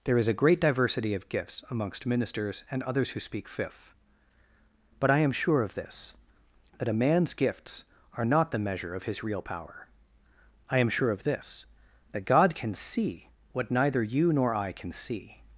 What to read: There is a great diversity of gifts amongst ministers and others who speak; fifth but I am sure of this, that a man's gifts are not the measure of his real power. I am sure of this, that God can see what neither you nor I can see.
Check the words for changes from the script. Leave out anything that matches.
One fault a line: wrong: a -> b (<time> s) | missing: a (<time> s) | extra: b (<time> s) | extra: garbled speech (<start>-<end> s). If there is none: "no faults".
no faults